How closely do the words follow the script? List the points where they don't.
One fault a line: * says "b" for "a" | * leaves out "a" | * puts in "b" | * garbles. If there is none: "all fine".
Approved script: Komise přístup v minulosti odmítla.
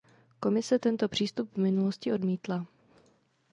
* puts in "tento"